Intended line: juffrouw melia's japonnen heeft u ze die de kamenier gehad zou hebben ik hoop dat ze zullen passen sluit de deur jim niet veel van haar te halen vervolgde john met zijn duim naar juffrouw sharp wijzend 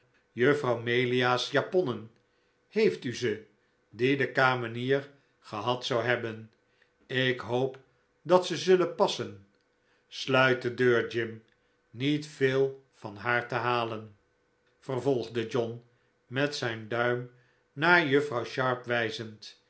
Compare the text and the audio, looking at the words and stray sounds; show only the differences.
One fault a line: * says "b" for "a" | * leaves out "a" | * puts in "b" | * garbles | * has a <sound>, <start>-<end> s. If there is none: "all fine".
all fine